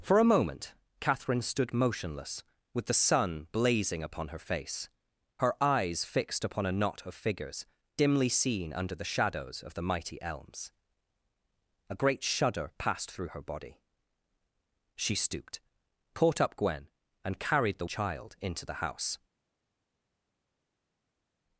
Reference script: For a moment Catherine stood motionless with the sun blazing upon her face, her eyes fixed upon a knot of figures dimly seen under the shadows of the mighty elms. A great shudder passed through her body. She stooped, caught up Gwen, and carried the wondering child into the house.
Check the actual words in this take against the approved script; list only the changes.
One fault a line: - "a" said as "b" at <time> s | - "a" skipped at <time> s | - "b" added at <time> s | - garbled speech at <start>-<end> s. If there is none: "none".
- "wondering" skipped at 17.9 s